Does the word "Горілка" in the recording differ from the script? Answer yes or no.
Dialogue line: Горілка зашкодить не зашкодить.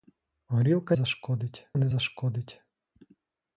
no